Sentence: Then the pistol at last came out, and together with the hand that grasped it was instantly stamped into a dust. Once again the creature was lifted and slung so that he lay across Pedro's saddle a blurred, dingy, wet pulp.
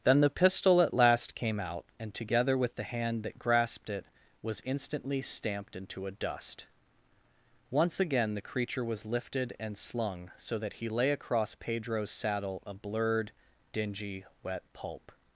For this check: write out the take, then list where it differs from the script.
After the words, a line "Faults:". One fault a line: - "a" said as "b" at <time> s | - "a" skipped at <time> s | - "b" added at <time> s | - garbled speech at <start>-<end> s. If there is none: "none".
Then the pistol at last came out, and together with the hand that grasped it was instantly stamped into a dust. Once again the creature was lifted and slung so that he lay across Pedro's saddle a blurred, dingy, wet pulp.
Faults:
none